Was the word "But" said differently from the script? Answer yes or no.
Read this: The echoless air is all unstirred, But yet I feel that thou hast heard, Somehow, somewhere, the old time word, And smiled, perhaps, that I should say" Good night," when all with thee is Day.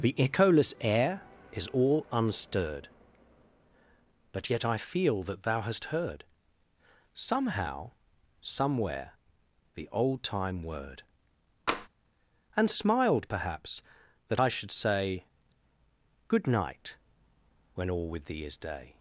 no